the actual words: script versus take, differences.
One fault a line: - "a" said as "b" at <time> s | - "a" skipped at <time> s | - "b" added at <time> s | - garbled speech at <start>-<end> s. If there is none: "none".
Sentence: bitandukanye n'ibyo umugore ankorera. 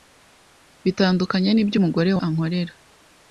none